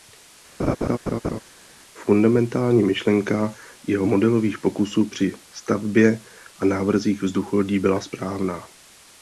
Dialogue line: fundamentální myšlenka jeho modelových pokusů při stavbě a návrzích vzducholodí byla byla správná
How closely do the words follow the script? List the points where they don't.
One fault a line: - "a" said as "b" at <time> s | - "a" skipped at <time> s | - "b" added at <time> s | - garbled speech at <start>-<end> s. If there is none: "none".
- "byla" skipped at 8.0 s